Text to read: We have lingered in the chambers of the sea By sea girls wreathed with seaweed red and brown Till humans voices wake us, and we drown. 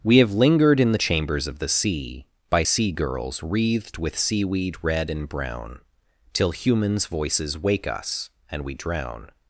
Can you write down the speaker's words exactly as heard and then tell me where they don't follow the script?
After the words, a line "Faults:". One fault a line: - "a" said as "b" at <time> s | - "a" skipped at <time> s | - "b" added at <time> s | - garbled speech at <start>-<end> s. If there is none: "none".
We have lingered in the chambers of the sea By sea girls wreathed with seaweed red and brown Till humans voices wake us, and we drown.
Faults:
none